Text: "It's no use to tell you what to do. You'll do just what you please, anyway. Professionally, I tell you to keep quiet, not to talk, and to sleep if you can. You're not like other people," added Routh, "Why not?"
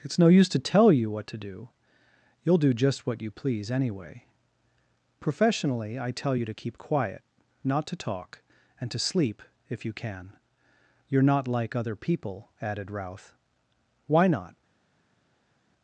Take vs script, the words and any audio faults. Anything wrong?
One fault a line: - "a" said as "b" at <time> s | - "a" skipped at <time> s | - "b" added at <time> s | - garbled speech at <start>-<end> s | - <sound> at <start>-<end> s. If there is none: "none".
none